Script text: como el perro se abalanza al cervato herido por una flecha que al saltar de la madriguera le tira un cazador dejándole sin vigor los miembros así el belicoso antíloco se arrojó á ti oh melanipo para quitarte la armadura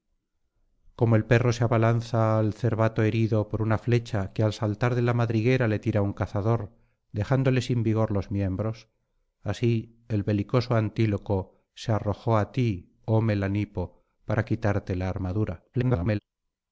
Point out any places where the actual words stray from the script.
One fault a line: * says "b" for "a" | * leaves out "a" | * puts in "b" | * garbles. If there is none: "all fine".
* garbles